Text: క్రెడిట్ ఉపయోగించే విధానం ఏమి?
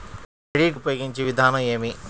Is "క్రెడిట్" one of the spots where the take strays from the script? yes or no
no